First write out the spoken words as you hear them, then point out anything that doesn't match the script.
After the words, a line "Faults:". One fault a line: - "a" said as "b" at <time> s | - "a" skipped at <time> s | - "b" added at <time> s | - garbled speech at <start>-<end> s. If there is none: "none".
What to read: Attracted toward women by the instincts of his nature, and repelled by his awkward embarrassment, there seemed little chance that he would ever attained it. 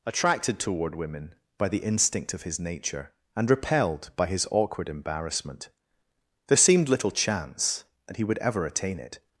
Attracted toward women by the instinct of his nature, and repelled by his awkward embarrassment, there seemed little chance that he would ever attain it.
Faults:
- "instincts" said as "instinct" at 1.8 s
- "attained" said as "attain" at 8.7 s